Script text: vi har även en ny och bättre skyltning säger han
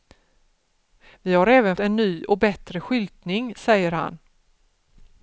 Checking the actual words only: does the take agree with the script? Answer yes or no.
yes